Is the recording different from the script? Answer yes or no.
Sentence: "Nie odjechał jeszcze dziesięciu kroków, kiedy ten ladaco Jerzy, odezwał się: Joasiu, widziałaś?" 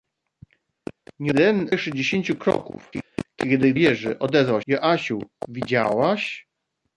yes